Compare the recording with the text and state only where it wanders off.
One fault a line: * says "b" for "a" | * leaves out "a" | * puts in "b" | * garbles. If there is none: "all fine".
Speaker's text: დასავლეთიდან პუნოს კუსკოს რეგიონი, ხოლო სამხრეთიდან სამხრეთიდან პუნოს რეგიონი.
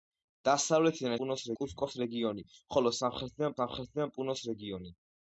all fine